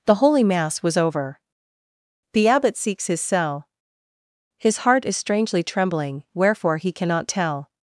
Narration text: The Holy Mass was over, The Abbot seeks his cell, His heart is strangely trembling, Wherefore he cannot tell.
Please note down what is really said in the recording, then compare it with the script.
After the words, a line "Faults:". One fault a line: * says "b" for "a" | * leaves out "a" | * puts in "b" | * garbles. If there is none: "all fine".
The Holy Mass was over, The Abbot seeks his cell, His heart is strangely trembling, Wherefore he cannot tell.
Faults:
all fine